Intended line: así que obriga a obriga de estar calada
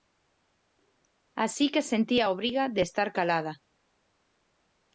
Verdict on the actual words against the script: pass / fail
fail